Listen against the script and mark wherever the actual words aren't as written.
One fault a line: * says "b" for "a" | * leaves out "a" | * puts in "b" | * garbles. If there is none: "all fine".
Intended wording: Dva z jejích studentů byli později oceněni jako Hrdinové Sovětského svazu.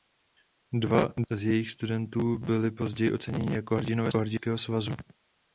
all fine